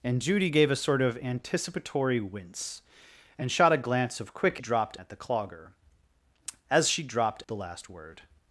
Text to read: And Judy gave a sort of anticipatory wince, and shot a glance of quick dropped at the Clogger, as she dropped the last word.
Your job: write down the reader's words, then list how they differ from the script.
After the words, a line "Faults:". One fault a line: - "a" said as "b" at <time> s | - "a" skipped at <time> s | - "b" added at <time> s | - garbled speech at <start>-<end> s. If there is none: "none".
And Judy gave a sort of anticipatory wince, and shot a glance of quick dropped at the Clogger, as she dropped the last word.
Faults:
none